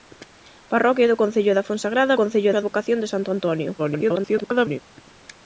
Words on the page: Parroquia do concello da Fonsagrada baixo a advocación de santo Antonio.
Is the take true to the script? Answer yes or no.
no